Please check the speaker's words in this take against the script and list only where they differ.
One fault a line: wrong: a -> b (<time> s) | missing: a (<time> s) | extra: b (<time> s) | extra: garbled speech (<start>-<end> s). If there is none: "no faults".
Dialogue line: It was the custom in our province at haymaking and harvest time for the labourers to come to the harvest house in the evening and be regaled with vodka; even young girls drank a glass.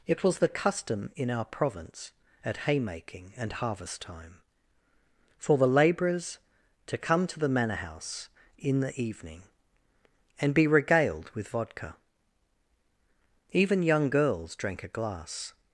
wrong: harvest -> manor (7.5 s)